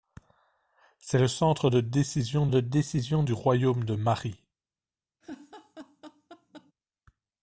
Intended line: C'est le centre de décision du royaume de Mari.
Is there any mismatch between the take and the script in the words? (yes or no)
yes